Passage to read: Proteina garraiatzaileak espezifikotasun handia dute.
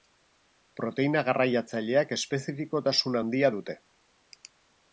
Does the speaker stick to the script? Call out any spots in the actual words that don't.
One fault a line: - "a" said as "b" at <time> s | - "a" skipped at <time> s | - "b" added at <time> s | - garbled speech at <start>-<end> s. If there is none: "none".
none